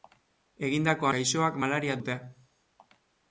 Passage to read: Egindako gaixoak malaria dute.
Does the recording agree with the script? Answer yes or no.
yes